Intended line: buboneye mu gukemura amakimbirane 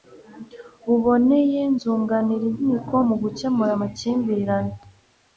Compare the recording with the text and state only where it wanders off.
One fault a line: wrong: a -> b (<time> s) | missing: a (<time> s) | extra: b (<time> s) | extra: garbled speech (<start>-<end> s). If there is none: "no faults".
extra: zunganira inkiko (1.8 s)